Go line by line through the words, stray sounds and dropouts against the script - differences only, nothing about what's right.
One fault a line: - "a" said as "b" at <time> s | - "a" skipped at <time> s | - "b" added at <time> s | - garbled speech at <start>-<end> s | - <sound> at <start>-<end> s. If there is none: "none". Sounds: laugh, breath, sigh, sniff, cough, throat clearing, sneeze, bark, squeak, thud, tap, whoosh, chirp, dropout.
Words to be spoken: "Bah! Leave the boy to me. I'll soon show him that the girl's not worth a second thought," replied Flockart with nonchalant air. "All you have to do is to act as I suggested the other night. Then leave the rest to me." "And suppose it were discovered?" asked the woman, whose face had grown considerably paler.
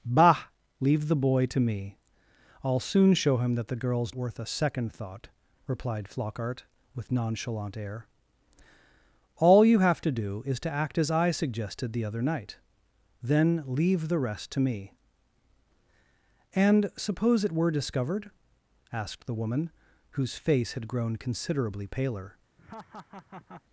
- "not" skipped at 4.2 s
- laugh at 22.6-23.6 s